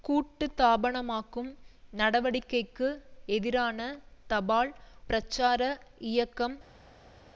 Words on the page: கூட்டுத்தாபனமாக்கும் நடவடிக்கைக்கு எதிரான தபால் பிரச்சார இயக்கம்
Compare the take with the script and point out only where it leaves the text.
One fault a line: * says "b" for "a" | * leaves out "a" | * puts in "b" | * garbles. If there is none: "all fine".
all fine